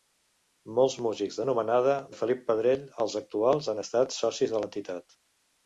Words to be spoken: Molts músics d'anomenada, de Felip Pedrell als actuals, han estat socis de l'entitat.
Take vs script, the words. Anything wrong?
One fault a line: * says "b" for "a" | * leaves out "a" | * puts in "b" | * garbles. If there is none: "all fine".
all fine